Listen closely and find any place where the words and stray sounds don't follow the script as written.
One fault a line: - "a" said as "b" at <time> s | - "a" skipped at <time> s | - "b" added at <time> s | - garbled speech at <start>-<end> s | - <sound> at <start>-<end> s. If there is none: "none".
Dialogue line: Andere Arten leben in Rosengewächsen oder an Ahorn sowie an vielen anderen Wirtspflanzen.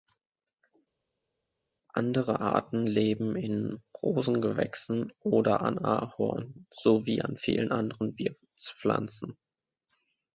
none